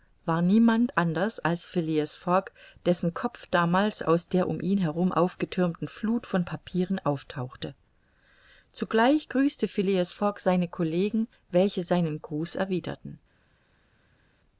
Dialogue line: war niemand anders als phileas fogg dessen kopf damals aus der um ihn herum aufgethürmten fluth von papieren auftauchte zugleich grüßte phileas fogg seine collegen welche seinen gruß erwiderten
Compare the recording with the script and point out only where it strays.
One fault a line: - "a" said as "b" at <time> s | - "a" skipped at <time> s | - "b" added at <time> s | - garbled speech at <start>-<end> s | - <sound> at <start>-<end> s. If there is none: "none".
none